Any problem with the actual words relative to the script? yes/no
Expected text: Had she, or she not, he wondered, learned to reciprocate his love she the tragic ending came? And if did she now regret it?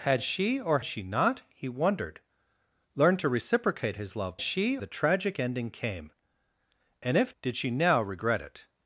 no